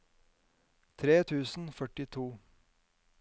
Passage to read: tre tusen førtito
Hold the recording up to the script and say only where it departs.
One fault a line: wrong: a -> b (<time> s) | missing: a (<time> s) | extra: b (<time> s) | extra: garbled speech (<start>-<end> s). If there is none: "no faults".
no faults